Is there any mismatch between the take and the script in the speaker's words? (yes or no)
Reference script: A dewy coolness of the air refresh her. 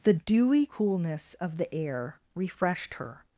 yes